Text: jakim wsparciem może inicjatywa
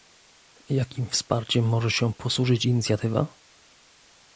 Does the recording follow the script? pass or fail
fail